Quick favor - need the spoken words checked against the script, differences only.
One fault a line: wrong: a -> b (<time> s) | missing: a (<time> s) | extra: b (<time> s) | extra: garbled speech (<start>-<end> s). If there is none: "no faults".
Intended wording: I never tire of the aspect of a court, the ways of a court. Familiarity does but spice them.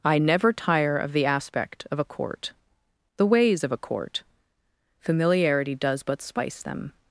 no faults